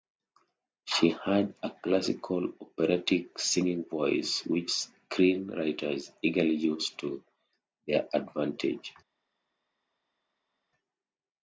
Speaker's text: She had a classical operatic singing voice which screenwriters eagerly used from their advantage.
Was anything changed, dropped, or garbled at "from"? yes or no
yes